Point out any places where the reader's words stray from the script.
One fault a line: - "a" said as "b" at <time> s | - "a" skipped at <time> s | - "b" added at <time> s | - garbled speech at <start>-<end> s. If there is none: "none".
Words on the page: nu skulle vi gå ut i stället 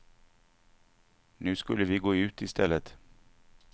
none